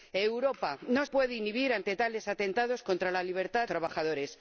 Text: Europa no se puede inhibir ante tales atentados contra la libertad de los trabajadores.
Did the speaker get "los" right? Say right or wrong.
wrong